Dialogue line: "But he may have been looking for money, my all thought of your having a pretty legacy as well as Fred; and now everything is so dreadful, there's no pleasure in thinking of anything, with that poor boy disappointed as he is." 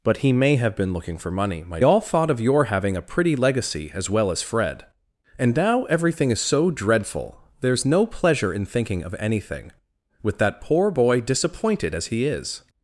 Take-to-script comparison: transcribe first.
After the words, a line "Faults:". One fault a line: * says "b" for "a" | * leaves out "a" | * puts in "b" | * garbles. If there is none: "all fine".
"But he may have been looking for money, my all thought of your having a pretty legacy as well as Fred; and now everything is so dreadful, there's no pleasure in thinking of anything, with that poor boy disappointed as he is."
Faults:
all fine